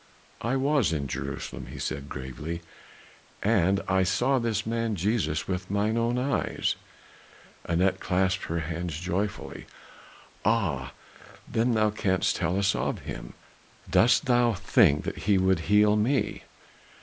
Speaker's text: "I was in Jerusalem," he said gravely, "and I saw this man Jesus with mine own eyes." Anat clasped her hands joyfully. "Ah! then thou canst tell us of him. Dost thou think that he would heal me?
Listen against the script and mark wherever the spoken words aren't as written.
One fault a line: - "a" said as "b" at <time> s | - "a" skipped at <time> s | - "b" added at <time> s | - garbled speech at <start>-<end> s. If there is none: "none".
none